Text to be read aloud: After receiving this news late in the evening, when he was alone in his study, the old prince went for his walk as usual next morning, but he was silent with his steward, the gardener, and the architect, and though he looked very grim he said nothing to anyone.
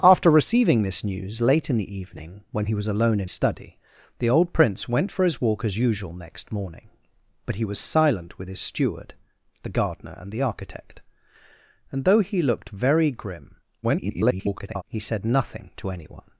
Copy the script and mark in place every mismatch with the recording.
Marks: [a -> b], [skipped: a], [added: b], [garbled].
After receiving this news late in the evening, when he was alone in [skipped: his] study, the old prince went for his walk as usual next morning, but he was silent with his steward, the gardener, and the architect, and though he looked very grim [garbled] he said nothing to anyone.